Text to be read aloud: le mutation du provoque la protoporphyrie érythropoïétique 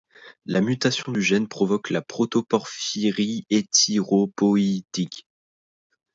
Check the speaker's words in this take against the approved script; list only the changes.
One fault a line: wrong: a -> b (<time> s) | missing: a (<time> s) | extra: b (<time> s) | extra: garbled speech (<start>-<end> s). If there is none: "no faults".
wrong: le -> la (0.5 s)
extra: gène (1.2 s)